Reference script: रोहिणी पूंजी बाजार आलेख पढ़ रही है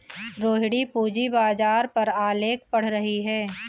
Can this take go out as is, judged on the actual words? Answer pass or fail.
fail